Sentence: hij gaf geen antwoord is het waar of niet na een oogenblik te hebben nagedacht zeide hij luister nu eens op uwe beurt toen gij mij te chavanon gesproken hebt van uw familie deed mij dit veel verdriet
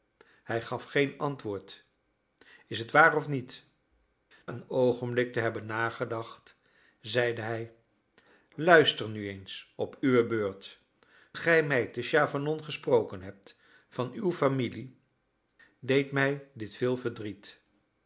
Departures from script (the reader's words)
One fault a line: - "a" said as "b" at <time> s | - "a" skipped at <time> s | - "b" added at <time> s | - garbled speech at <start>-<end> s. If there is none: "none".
- "na" skipped at 3.6 s
- "toen" skipped at 10.8 s